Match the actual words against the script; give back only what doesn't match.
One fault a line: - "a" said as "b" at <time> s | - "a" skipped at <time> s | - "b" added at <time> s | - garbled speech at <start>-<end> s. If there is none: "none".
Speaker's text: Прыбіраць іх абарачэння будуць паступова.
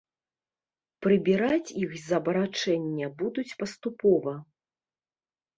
- "з" added at 2.0 s